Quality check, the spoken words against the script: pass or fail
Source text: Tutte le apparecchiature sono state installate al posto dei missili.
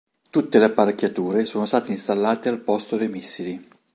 pass